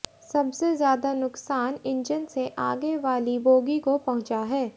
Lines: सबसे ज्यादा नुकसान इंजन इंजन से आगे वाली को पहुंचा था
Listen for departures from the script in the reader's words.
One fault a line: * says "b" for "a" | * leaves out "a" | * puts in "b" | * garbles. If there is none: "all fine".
* leaves out "इंजन"
* puts in "बोगी"
* says "है" for "था"